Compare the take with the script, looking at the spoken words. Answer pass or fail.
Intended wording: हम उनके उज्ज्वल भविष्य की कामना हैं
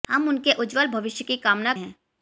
pass